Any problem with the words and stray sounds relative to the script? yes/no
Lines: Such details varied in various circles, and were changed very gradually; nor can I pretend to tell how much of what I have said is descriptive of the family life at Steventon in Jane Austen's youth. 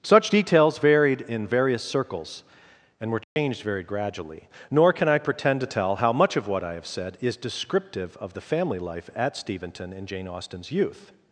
yes